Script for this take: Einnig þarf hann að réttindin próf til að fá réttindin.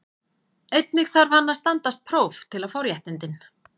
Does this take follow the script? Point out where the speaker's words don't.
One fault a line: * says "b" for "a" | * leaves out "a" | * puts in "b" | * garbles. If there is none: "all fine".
* says "standast" for "réttindin"